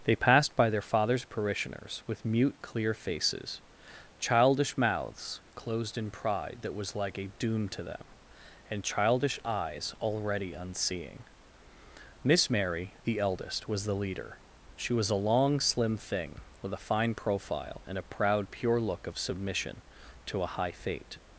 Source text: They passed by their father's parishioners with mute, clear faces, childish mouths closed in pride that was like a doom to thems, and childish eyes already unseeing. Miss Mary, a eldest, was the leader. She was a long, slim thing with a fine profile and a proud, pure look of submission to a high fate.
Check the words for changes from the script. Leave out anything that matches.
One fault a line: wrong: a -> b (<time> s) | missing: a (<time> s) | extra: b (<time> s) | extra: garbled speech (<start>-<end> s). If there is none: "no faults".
wrong: thems -> them (7.8 s)
wrong: a -> the (13.0 s)